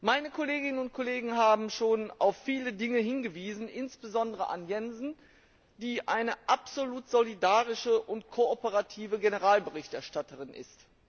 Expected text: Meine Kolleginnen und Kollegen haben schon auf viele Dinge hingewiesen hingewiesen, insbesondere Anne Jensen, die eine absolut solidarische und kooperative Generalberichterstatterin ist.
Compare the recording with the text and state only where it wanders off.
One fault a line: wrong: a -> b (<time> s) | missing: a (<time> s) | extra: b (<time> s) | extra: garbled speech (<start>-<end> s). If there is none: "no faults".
missing: hingewiesen (3.7 s)